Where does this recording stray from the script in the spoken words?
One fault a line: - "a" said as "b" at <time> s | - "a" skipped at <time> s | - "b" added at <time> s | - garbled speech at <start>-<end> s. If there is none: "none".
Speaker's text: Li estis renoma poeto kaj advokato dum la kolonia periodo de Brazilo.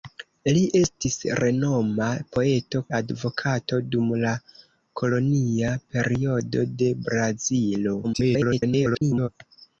- "kaj" skipped at 2.8 s
- garbled speech at 8.0-9.3 s